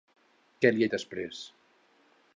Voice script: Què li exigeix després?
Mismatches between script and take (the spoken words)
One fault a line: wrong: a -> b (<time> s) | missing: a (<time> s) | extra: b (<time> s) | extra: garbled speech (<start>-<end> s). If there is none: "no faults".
missing: exigeix (0.9 s)